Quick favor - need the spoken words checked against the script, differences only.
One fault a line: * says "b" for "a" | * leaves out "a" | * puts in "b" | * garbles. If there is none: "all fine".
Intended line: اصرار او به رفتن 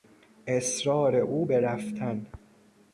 all fine